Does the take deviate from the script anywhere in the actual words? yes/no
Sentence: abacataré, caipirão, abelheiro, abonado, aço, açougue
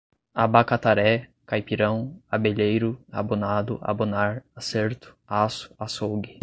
yes